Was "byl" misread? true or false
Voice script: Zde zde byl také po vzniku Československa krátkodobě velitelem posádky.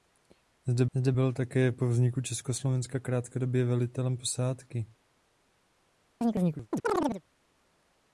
false